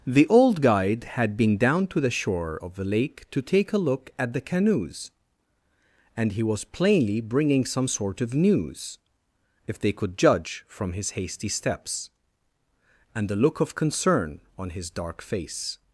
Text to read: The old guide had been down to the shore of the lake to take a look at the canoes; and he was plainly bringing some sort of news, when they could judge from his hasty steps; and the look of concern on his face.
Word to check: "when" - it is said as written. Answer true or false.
false